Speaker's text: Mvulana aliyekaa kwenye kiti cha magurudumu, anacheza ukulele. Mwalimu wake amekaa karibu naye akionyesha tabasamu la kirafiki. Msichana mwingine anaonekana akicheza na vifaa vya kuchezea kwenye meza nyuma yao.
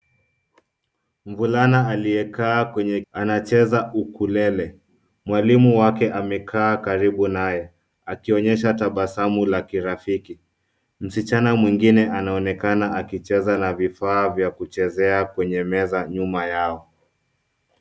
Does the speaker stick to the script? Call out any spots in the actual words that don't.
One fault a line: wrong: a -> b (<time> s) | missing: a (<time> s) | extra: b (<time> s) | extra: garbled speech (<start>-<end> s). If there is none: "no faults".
missing: kiti cha magurudumu (3.0 s)